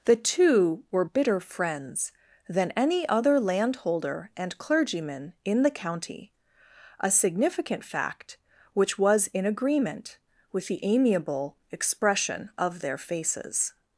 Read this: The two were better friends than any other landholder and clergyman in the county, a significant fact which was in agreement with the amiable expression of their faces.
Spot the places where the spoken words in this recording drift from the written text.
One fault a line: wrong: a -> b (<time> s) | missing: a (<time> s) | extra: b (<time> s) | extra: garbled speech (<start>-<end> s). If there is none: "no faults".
wrong: better -> bitter (1.0 s)